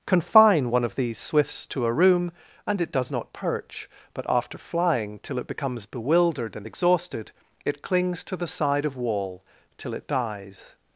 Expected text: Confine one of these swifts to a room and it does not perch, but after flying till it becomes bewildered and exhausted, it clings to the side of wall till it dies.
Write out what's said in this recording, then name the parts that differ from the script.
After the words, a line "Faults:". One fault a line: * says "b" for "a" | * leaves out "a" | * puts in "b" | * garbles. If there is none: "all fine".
Confine one of these swifts to a room and it does not perch, but after flying till it becomes bewildered and exhausted, it clings to the side of wall till it dies.
Faults:
all fine